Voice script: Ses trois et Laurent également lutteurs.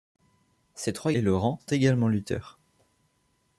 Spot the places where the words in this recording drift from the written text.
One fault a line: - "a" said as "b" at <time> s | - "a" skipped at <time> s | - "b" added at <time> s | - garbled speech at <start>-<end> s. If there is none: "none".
none